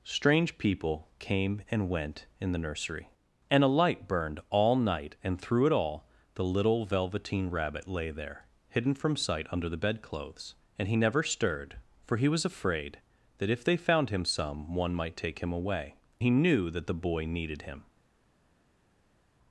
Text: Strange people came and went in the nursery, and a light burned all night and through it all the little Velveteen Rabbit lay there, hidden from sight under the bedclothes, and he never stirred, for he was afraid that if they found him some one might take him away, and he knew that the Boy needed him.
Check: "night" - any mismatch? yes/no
no